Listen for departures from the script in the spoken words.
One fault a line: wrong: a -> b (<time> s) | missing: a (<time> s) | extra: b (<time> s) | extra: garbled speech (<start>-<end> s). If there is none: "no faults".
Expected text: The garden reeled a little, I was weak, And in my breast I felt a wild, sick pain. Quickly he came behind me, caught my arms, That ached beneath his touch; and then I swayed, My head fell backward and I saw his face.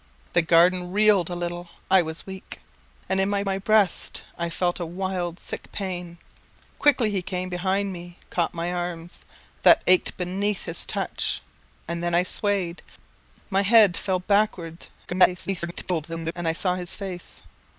extra: my (3.4 s)
extra: garbled speech (15.1-16.3 s)